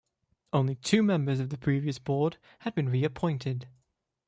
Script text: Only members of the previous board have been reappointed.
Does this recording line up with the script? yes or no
no